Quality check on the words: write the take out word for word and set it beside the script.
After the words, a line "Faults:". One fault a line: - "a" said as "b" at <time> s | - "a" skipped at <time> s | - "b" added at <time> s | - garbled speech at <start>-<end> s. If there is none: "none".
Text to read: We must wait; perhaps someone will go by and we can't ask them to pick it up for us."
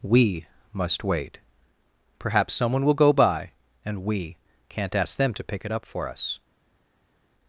We must wait; perhaps someone will go by and we can't ask them to pick it up for us."
Faults:
none